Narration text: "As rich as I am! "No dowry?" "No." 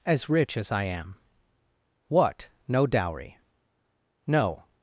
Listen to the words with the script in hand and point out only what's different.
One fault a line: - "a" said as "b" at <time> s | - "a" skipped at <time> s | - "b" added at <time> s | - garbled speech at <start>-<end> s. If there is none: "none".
- "What" added at 2.1 s